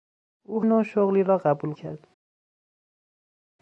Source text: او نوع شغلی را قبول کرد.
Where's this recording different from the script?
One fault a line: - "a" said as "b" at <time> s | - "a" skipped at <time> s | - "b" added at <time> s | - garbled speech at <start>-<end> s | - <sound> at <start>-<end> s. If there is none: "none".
none